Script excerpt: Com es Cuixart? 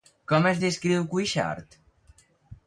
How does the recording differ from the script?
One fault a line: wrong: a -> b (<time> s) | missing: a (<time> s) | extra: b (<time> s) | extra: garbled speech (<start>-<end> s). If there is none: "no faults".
extra: descriu (0.6 s)